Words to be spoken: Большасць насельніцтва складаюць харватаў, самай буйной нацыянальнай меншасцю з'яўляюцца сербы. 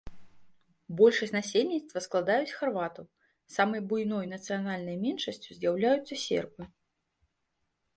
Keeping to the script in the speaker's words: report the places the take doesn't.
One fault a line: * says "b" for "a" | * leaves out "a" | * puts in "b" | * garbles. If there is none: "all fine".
all fine